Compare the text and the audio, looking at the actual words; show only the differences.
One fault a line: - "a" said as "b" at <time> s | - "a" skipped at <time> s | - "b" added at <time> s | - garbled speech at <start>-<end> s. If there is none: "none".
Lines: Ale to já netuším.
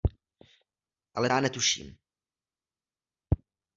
- "to" skipped at 1.3 s